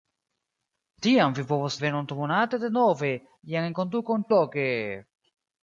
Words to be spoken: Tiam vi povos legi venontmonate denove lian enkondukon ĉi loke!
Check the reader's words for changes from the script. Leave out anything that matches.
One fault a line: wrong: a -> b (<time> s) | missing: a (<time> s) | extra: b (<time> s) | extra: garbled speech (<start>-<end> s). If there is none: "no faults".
missing: legi (1.8 s)
missing: ĉi (4.3 s)